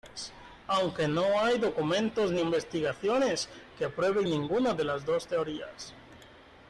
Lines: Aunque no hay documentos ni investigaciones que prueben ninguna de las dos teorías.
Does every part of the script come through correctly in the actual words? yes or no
yes